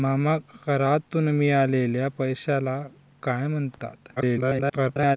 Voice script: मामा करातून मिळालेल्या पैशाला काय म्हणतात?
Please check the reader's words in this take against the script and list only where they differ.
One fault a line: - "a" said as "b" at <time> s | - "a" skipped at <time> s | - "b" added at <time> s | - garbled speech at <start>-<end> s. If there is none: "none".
- garbled speech at 4.2-5.2 s